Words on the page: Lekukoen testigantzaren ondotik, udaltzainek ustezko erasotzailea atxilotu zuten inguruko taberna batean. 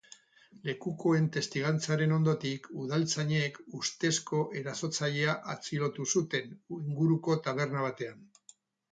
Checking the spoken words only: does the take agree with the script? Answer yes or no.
yes